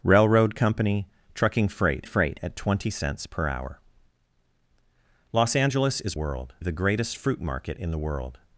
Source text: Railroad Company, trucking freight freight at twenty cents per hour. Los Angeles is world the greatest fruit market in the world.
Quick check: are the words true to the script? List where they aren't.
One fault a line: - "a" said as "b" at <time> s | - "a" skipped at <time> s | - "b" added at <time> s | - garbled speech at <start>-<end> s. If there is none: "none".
none